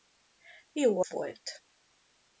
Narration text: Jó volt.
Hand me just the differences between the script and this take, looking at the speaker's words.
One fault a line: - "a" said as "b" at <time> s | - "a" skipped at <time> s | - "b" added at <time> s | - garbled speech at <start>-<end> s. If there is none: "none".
none